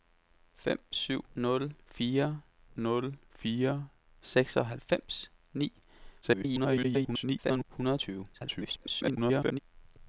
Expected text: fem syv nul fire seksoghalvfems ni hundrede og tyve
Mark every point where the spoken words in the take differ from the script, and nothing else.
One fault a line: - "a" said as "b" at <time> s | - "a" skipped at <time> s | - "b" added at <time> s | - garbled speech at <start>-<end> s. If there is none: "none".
- "nul fire" added at 2.8 s
- garbled speech at 6.2-7.6 s
- garbled speech at 8.3-9.6 s